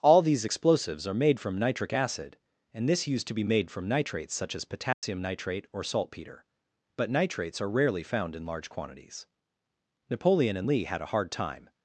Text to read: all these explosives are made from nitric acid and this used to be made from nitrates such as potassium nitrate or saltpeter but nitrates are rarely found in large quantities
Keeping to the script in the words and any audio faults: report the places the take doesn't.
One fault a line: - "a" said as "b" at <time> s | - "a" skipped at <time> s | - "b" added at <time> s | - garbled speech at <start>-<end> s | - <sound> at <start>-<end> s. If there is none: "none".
- dropout at 4.9-5.0 s
- "napoleon and lee had a hard time" added at 10.1 s